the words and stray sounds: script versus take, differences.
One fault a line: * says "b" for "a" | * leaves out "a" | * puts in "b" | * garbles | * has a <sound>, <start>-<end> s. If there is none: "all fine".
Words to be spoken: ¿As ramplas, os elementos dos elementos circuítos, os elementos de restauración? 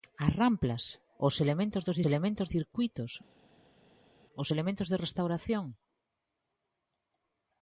all fine